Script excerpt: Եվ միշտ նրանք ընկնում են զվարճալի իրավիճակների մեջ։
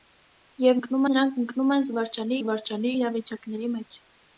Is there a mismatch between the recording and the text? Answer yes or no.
yes